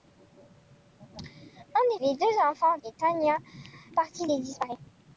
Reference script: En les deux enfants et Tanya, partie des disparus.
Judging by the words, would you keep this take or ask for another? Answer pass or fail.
pass